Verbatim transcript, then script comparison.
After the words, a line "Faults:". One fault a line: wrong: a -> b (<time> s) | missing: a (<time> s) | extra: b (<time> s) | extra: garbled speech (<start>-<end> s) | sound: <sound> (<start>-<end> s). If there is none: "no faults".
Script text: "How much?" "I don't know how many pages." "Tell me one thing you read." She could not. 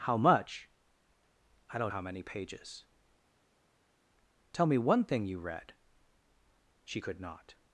"How much?" "I don't how many pages." "Tell me one thing you read." She could not.
Faults:
missing: know (1.9 s)